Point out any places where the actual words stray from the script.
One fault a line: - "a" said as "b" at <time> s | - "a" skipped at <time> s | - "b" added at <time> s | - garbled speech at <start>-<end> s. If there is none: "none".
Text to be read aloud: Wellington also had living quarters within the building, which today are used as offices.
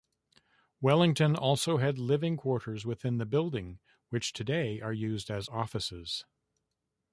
none